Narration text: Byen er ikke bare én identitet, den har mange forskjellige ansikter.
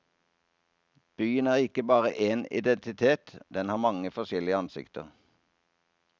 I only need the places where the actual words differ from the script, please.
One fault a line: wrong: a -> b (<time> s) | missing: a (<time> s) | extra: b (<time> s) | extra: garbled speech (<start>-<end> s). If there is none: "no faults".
no faults